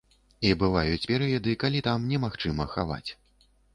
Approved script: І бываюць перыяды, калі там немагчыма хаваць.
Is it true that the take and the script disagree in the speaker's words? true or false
false